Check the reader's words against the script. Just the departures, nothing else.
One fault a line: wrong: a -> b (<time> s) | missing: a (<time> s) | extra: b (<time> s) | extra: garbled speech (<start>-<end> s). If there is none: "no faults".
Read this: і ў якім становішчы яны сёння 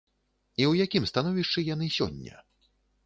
no faults